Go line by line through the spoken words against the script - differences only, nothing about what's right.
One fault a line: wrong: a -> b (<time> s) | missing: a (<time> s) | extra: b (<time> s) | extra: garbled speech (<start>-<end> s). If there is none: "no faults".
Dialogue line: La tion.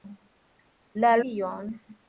no faults